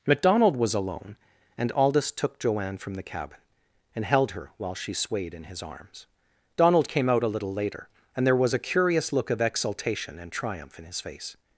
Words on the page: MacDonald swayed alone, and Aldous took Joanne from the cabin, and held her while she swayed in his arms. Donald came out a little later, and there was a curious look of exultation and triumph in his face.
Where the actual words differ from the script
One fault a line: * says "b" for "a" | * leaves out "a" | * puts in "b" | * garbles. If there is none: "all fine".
* says "was" for "swayed"